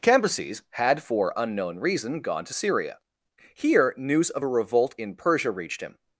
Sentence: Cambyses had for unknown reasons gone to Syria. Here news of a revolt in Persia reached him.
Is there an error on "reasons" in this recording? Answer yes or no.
yes